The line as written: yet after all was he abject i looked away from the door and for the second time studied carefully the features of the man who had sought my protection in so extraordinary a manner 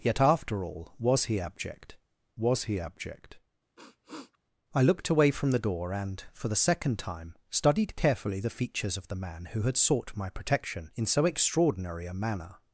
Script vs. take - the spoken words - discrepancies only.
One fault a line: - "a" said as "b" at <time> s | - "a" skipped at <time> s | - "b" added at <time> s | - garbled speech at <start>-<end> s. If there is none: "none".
- "was he abject" added at 2.3 s